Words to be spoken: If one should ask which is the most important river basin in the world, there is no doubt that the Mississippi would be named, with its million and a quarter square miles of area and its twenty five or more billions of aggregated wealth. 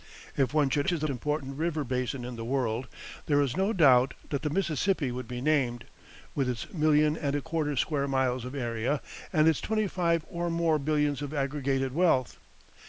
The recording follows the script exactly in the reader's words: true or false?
false